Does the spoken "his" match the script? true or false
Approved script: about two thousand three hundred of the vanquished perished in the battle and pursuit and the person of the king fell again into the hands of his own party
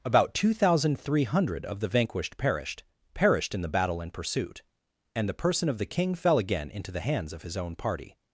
true